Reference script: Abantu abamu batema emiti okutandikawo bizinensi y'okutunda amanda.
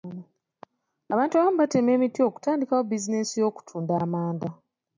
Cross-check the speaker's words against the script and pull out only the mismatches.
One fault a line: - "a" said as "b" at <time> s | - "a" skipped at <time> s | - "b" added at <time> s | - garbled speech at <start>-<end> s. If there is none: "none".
none